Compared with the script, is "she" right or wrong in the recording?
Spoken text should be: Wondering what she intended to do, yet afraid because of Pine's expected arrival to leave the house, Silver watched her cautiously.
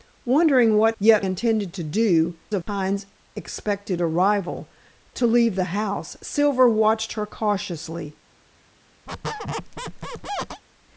wrong